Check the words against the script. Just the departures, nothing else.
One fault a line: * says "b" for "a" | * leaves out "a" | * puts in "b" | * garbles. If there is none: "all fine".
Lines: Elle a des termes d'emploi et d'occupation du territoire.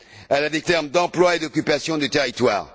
all fine